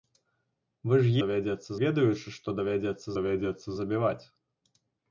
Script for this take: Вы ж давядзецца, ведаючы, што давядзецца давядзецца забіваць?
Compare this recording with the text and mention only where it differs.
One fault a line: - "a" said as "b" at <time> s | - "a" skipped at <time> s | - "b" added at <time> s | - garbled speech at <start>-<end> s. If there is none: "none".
none